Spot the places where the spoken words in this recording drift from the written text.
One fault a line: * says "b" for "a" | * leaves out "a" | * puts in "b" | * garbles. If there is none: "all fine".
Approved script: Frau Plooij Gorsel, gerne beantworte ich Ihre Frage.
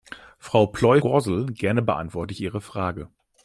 all fine